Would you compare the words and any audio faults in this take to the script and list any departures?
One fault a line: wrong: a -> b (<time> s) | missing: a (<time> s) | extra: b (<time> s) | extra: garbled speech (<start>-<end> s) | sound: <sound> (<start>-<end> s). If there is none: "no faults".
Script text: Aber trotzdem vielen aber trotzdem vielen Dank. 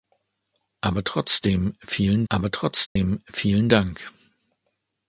sound: dropout (2.9-3.0 s)